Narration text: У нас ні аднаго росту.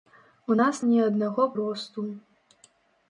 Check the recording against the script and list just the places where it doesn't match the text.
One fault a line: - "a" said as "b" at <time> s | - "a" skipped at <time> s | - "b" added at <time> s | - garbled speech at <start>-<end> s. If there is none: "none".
none